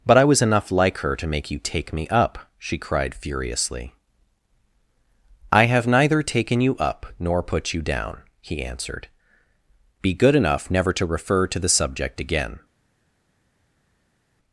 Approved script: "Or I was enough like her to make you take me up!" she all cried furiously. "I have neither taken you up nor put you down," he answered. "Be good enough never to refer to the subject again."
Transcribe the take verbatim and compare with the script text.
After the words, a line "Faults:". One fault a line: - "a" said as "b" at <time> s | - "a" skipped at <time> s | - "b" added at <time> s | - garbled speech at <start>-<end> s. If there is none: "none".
"But I was enough like her to make you take me up!" she cried furiously. "I have neither taken you up nor put you down," he answered. "Be good enough never to refer to the subject again."
Faults:
- "Or" said as "But" at 0.1 s
- "all" skipped at 2.8 s